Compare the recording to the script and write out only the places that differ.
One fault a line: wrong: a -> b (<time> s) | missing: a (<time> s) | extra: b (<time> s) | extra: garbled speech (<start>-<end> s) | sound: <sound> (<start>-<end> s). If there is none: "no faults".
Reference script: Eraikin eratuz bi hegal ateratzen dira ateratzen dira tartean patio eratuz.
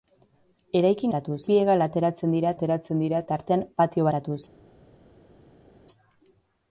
no faults